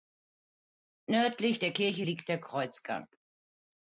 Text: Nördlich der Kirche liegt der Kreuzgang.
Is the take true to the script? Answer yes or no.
yes